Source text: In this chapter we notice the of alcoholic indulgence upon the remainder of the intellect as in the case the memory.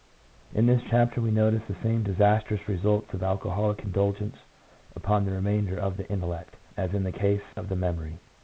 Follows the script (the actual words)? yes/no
no